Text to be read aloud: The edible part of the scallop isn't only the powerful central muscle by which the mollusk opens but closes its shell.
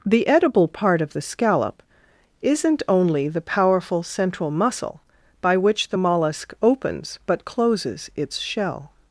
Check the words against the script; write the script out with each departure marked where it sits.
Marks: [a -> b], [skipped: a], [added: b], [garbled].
The edible part of the scallop isn't only the powerful central muscle by which the mollusk opens but closes its shell.